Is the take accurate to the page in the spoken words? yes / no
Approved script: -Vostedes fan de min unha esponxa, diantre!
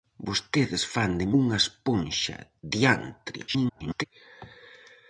no